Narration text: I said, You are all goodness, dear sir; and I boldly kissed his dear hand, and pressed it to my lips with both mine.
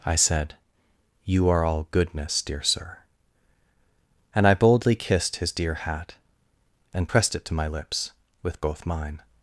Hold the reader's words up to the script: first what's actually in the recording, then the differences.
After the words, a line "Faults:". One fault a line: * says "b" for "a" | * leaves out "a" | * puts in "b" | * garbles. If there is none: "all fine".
I said, You are all goodness, dear sir; and I boldly kissed his dear hat, and pressed it to my lips with both mine.
Faults:
* says "hat" for "hand"